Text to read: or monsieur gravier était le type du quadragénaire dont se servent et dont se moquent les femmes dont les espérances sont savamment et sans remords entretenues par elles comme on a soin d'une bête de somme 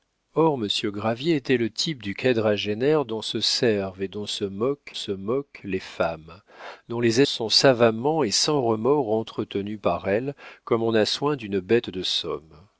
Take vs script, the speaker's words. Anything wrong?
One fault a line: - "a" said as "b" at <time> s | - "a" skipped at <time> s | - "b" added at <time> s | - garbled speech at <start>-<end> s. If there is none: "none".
- "se moquent" added at 4.9 s
- "espérances" skipped at 7.2 s